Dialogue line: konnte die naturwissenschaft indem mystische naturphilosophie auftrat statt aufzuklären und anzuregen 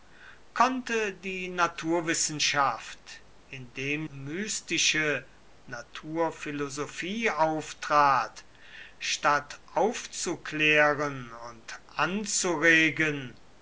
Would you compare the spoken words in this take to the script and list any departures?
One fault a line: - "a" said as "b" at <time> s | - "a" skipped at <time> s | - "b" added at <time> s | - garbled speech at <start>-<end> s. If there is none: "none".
none